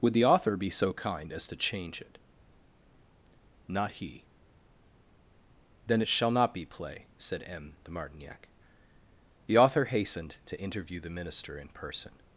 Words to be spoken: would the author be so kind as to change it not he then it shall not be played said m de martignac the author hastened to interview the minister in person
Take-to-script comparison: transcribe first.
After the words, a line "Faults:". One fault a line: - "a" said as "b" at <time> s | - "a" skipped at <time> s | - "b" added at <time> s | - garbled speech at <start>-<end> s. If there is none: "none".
would the author be so kind as to change it not he then it shall not be play said m de martignac the author hastened to interview the minister in person
Faults:
- "played" said as "play" at 6.6 s